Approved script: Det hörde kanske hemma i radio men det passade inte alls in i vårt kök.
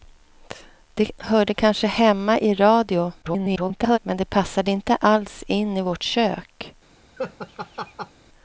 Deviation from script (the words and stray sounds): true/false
true